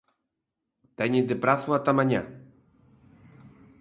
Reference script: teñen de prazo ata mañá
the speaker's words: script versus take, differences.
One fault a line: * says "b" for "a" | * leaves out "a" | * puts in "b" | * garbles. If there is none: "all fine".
all fine